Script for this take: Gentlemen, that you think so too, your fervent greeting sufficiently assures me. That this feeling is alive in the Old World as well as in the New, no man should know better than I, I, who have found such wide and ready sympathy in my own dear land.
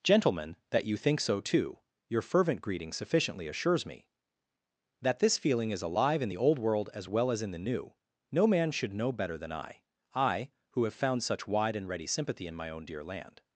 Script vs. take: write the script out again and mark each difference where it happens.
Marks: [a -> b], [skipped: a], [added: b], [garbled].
Gentlemen, that you think so too, your fervent greeting sufficiently assures me. That this feeling is alive in the Old World as well as in the New, no man should know better than I, I, who have found such wide and ready sympathy in my own dear land.